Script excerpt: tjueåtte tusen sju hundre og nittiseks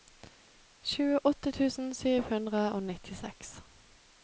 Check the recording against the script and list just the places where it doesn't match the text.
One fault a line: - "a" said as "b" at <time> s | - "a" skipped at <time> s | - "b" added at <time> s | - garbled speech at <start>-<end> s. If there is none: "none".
none